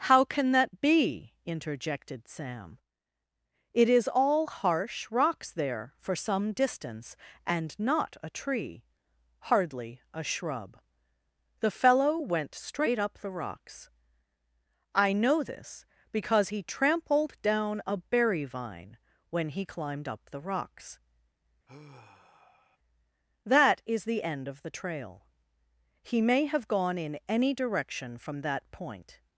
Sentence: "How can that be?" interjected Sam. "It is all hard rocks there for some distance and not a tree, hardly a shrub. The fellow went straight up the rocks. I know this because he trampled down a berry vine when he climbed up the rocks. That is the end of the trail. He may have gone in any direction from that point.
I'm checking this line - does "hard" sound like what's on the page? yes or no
no